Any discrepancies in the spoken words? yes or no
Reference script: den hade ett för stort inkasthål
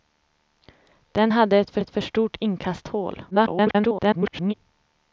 yes